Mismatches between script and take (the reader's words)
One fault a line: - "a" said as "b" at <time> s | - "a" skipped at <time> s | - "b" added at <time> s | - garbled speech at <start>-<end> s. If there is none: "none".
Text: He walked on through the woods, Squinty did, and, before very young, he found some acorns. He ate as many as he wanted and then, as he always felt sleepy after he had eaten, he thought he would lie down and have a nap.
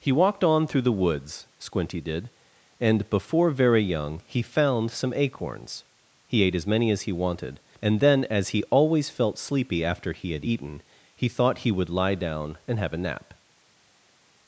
none